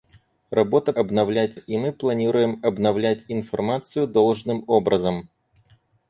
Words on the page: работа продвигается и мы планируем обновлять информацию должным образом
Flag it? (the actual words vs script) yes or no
yes